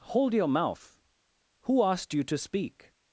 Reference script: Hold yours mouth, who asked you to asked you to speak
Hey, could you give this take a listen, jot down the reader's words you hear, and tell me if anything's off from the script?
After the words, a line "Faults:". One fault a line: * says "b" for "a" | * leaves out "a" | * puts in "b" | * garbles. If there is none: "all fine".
Hold your mouth, who asked you to speak
Faults:
* says "your" for "yours"
* leaves out "asked you to"